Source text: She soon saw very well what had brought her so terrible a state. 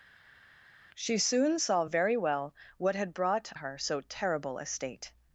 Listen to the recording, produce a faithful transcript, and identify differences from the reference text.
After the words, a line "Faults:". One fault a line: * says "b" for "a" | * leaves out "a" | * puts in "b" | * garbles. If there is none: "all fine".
She soon saw very well what had brought her so terrible a state.
Faults:
all fine